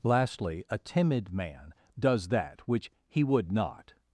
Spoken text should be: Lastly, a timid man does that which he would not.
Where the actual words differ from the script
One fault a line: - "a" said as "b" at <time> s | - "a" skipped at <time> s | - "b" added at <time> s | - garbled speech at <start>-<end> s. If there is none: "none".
none